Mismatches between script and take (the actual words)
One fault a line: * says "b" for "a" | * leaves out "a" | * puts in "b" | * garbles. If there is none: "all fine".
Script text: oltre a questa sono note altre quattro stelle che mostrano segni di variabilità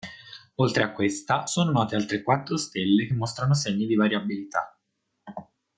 all fine